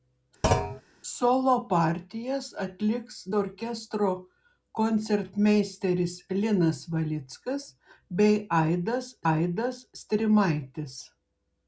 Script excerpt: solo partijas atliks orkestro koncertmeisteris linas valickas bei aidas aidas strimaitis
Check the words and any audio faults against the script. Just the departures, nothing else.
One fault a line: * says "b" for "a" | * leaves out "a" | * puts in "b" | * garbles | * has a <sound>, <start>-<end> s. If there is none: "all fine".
* has a thud, 0.4-0.8 s